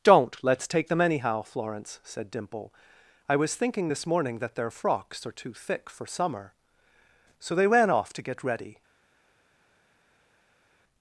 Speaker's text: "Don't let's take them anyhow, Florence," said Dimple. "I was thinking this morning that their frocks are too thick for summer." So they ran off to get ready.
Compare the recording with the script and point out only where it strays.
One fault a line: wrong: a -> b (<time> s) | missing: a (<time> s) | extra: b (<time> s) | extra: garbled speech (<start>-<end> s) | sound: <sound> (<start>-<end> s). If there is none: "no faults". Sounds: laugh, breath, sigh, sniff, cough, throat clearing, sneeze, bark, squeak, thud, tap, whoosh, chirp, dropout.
no faults